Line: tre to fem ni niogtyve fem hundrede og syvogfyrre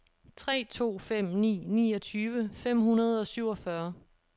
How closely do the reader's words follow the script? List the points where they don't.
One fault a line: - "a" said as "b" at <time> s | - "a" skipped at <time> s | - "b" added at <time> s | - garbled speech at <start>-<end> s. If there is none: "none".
none